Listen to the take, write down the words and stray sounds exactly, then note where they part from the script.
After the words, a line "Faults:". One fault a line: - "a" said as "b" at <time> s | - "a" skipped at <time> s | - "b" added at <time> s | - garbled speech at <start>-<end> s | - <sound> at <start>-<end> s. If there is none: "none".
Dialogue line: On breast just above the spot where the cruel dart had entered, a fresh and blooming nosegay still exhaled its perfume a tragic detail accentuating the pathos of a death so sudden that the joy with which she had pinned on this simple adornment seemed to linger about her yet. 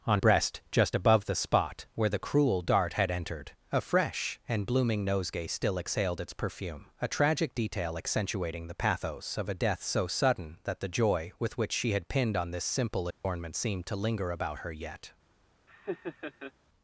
On breast just above the spot where the cruel dart had entered, a fresh and blooming nosegay still exhaled its perfume a tragic detail accentuating the pathos of a death so sudden that the joy with which she had pinned on this simple adornment seemed to linger about her yet.
Faults:
- dropout at 13.1-13.2 s
- laugh at 15.7-16.5 s